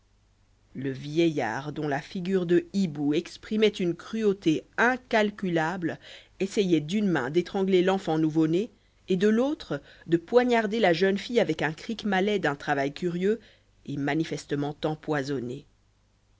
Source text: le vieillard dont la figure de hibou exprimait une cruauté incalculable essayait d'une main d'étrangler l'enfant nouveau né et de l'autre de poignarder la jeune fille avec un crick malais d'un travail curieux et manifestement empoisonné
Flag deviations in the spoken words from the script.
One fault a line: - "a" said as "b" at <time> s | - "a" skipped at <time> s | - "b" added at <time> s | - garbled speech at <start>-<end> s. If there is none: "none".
none